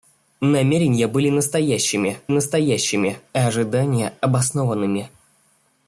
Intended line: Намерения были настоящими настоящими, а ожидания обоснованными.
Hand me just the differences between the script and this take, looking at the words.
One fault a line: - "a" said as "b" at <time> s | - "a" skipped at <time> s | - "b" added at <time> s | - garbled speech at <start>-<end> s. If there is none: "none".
none